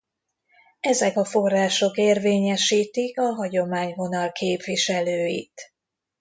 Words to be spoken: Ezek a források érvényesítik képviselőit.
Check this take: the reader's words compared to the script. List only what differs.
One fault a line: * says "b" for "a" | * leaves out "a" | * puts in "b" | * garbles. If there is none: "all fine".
* puts in "a hagyományvonal"